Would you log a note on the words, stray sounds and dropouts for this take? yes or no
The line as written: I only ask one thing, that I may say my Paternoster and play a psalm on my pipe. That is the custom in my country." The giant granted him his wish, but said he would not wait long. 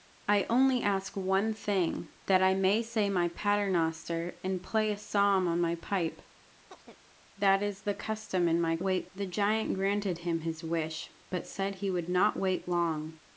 yes